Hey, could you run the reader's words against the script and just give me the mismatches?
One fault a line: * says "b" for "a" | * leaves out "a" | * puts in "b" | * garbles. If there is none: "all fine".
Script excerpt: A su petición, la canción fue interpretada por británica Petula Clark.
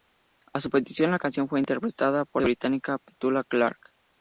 all fine